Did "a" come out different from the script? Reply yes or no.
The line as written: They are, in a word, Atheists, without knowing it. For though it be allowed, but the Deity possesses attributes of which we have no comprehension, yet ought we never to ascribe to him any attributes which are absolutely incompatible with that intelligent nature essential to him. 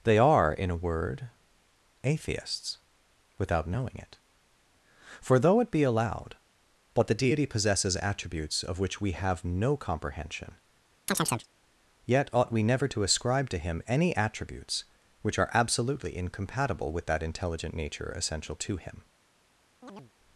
no